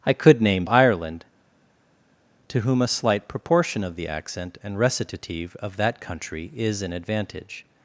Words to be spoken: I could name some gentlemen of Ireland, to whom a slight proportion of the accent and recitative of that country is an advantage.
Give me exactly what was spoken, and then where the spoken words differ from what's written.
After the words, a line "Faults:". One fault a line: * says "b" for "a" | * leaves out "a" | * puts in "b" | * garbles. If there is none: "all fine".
I could name Ireland, to whom a slight proportion of the accent and recitative of that country is an advantage.
Faults:
* leaves out "some gentlemen of"